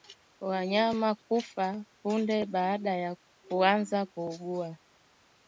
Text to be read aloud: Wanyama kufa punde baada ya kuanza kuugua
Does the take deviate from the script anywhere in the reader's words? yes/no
no